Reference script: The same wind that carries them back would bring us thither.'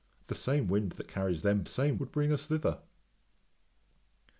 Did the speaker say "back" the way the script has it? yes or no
no